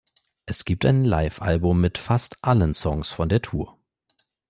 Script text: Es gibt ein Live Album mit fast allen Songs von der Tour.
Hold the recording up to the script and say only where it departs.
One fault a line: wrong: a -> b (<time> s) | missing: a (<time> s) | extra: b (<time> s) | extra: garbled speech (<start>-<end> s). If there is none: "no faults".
no faults